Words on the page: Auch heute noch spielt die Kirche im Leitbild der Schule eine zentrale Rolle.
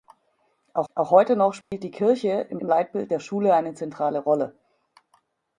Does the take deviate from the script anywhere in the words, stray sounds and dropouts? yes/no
yes